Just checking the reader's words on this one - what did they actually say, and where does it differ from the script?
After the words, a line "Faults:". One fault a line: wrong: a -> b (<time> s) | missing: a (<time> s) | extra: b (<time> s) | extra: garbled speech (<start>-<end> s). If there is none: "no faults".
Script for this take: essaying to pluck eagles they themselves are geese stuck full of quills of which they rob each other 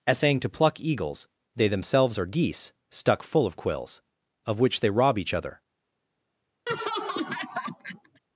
essaying to pluck eagles they themselves are geese stuck full of quills of which they rob each other
Faults:
no faults